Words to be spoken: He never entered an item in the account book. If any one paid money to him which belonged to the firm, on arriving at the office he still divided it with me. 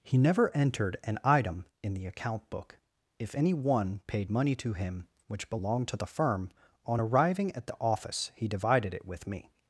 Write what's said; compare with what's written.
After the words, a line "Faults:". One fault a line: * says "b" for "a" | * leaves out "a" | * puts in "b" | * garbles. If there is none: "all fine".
He never entered an item in the account book. If any one paid money to him which belonged to the firm, on arriving at the office he divided it with me.
Faults:
* leaves out "still"